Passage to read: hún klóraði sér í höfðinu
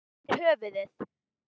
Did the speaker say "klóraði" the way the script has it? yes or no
no